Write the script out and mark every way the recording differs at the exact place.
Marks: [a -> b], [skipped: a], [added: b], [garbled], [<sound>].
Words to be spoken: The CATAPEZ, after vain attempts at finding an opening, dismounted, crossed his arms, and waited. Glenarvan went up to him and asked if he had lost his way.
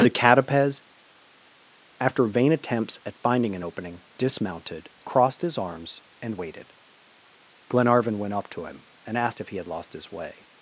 The CATAPEZ, after vain attempts at finding an opening, dismounted, crossed his arms, and waited. Glenarvan went up to him and asked if he had lost his way.